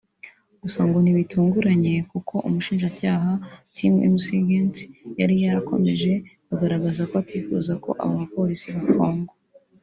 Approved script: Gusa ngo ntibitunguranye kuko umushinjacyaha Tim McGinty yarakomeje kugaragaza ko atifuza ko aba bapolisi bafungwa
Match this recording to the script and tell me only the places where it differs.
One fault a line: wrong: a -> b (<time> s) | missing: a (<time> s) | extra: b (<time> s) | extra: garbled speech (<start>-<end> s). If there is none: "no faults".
extra: yari (5.2 s)